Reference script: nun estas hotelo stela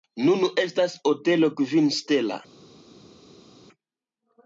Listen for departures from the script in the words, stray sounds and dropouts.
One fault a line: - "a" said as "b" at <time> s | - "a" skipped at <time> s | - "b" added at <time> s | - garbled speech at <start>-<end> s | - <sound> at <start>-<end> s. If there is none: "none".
- "kvin" added at 1.6 s